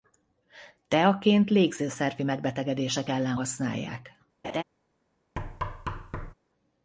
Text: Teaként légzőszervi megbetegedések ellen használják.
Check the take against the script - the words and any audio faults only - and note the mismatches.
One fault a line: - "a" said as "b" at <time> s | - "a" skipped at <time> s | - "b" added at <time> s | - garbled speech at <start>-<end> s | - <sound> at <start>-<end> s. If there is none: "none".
- laugh at 4.4-4.6 s
- thud at 5.4-6.3 s